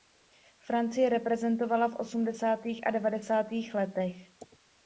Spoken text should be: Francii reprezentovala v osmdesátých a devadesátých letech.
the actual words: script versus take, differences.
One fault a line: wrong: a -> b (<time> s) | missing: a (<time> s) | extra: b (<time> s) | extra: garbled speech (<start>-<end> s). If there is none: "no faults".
no faults